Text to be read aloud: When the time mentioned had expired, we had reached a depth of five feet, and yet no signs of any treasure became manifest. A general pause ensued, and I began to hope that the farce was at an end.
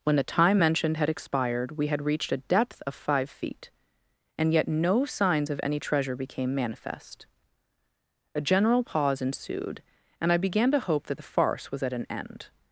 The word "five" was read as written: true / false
true